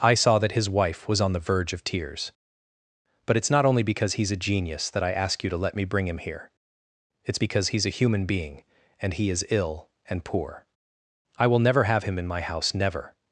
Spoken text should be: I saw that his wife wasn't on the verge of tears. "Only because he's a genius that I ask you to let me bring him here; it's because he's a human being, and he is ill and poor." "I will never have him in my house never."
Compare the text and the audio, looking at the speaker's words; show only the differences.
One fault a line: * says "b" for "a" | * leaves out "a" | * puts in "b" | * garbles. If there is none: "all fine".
* says "was" for "wasn't"
* puts in "But it's not"